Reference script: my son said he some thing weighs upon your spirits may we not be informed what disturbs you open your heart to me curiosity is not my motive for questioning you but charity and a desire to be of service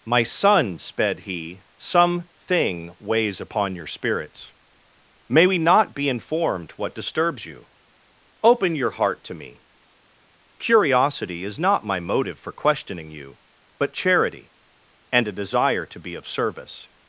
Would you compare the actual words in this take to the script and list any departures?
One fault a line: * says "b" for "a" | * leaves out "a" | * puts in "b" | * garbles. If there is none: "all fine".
* says "sped" for "said"